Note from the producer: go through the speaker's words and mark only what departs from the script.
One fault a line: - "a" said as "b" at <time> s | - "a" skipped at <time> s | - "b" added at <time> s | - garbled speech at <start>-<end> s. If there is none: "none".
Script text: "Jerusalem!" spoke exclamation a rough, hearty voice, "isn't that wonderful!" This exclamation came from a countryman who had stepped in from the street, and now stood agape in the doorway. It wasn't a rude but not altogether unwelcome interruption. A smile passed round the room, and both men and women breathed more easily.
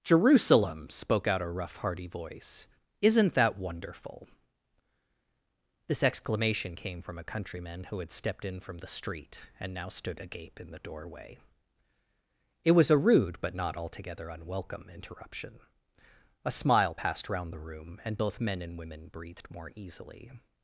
- "exclamation" said as "out" at 1.3 s
- "wasn't" said as "was" at 12.7 s